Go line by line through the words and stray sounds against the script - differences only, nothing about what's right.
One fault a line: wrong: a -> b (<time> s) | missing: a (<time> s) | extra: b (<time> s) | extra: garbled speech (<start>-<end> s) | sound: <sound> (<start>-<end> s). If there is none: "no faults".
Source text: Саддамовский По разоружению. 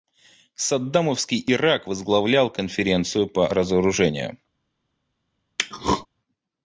extra: Ирак возглавлял Конференцию (1.4 s)
sound: throat clearing (5.6-6.1 s)